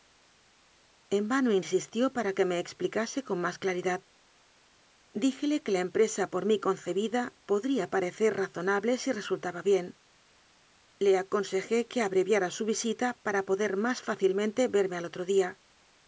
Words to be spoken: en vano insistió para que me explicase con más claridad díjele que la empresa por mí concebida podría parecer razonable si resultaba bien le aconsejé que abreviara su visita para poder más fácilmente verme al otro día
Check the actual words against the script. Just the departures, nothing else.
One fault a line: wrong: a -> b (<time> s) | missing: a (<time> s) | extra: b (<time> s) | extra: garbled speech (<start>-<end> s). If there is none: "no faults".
no faults